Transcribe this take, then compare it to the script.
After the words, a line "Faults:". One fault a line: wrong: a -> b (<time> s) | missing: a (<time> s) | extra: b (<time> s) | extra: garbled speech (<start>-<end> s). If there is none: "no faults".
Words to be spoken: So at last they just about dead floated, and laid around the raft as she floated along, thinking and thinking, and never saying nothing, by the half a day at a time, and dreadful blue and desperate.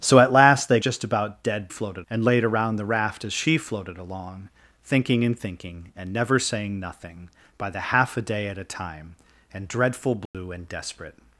So at last they just about dead floated, and laid around the raft as she floated along, thinking and thinking, and never saying nothing, by the half a day at a time, and dreadful blue and desperate.
Faults:
no faults